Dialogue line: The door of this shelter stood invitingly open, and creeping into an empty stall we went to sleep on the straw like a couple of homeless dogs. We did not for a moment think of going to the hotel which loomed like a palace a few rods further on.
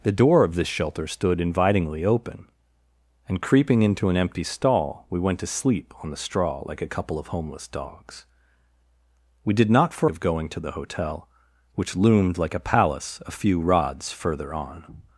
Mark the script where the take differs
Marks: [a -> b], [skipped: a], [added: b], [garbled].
The door of this shelter stood invitingly open, and creeping into an empty stall we went to sleep on the straw like a couple of homeless dogs. We did not for [skipped: a moment think] of going to the hotel which loomed like a palace a few rods further on.